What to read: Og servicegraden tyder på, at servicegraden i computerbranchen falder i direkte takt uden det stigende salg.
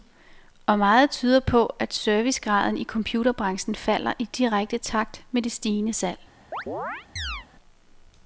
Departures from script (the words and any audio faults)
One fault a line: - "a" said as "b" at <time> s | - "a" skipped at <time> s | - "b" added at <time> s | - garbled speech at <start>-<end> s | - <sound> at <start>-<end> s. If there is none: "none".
- "servicegraden" said as "meget" at 0.8 s
- "uden" said as "med" at 5.3 s
- chirp at 6.5-7.5 s